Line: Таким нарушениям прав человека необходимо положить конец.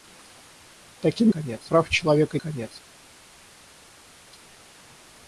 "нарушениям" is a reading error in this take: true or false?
true